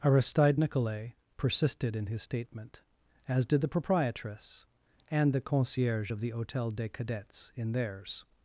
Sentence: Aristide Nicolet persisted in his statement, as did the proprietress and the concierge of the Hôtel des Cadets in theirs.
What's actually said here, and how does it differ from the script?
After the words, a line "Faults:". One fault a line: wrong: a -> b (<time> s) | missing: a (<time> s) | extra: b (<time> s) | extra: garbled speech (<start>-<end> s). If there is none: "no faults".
Aristide Nicolet persisted in his statement, as did the proprietress and the concierge of the Hôtel des Cadets in theirs.
Faults:
no faults